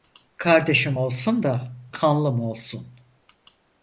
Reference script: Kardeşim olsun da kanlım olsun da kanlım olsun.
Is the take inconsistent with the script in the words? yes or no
yes